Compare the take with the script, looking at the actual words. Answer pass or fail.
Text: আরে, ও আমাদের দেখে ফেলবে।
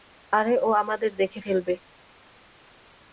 pass